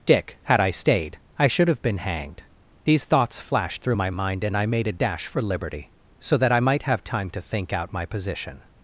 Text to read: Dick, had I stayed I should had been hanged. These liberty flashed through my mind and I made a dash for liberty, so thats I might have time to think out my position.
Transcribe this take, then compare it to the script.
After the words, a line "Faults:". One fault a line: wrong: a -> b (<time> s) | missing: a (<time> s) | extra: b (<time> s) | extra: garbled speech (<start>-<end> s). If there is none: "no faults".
Dick, had I stayed I should have been hanged. These thoughts flashed through my mind and I made a dash for liberty, so that I might have time to think out my position.
Faults:
wrong: had -> have (1.7 s)
wrong: liberty -> thoughts (3.0 s)
wrong: thats -> that (6.4 s)